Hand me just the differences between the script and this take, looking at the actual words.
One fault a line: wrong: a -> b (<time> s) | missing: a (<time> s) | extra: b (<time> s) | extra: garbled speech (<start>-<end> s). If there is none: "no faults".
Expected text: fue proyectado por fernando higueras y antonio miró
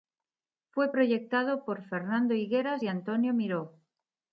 no faults